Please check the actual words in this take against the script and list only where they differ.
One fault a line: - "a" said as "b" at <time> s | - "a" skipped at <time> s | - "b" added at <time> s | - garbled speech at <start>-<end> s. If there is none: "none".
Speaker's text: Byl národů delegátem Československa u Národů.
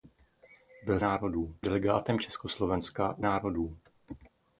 none